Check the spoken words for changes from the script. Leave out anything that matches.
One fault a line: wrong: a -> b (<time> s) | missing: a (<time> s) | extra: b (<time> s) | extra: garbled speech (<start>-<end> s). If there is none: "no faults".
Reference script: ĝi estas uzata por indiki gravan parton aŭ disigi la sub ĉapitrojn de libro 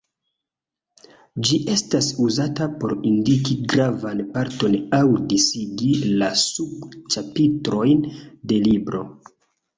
no faults